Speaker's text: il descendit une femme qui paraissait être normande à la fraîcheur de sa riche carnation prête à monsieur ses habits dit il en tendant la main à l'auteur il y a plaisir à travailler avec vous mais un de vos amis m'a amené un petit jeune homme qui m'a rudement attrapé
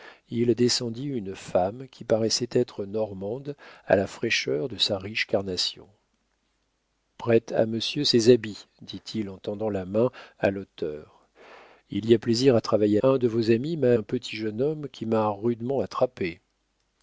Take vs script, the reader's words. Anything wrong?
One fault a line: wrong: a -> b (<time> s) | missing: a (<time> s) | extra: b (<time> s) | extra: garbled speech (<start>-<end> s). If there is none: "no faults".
missing: avec vous mais (13.0 s)
missing: amené (13.9 s)